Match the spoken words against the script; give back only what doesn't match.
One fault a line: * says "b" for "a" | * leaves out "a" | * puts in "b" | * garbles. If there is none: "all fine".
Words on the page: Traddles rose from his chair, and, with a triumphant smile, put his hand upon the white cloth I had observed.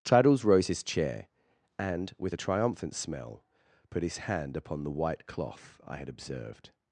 * leaves out "from"
* says "smell" for "smile"